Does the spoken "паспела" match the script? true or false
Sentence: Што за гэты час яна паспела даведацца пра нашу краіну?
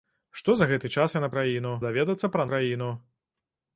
false